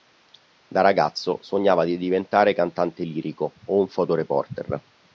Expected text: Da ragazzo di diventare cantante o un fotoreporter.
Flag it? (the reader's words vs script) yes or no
yes